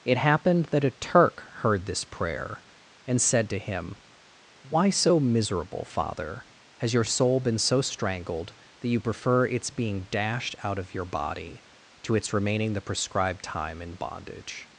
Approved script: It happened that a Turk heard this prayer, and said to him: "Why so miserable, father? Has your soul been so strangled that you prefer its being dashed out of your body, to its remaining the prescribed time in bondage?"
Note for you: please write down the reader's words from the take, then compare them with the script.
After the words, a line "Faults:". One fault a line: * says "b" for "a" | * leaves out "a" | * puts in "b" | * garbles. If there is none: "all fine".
It happened that a Turk heard this prayer, and said to him: "Why so miserable, father? Has your soul been so strangled that you prefer its being dashed out of your body, to its remaining the prescribed time in bondage?"
Faults:
all fine